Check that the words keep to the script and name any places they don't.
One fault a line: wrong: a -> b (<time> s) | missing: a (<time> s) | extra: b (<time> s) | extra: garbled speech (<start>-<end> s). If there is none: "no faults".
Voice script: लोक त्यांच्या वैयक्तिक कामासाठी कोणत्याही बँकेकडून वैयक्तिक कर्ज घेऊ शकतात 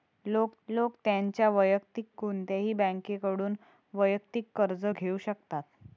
extra: लोक (0.7 s)
missing: कामासाठी (2.0 s)